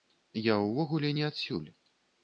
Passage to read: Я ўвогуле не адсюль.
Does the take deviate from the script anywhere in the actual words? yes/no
no